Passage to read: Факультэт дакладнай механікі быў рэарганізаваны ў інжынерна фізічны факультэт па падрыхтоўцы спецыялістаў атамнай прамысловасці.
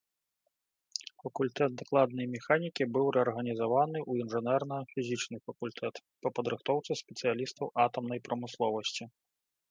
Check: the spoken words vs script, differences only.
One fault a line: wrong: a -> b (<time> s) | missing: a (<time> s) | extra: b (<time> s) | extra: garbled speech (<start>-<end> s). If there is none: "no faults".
no faults